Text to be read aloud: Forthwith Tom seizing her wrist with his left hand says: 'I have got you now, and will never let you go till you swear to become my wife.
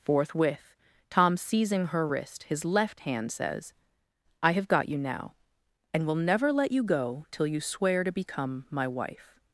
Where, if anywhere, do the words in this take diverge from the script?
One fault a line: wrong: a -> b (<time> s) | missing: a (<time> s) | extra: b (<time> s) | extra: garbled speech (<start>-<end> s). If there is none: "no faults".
missing: with (2.4 s)